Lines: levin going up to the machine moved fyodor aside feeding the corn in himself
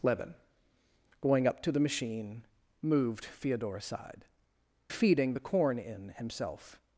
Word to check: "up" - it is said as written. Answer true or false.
true